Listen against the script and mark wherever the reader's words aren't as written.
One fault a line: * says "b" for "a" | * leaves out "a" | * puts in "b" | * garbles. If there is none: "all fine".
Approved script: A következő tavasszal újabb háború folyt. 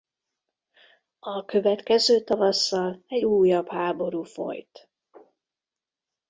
* puts in "egy"